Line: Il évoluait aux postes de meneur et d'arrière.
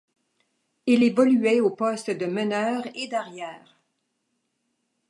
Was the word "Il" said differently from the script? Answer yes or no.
no